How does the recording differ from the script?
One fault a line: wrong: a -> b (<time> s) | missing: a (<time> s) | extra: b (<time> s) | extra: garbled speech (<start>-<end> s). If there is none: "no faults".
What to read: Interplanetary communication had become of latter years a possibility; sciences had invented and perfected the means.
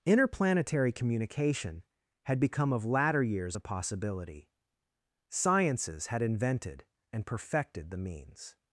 no faults